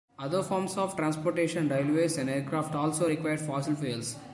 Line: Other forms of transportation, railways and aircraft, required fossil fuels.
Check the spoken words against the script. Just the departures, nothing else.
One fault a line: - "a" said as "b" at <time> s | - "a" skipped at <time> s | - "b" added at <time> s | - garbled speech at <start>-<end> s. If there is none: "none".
- "also" added at 2.8 s